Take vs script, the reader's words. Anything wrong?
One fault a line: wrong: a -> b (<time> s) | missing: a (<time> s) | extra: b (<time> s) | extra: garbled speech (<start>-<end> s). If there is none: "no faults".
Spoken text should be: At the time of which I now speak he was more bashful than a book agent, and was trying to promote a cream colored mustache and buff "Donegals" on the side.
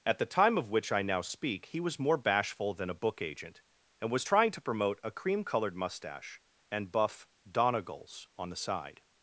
no faults